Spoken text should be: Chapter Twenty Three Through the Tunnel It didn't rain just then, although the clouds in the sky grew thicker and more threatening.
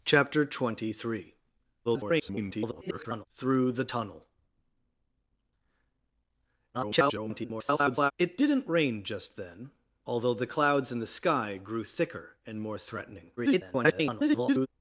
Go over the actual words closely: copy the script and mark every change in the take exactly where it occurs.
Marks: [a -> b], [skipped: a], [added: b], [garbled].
Chapter Twenty Three [garbled] Through the Tunnel [garbled] It didn't rain just then, although the clouds in the sky grew thicker and more threatening. [garbled]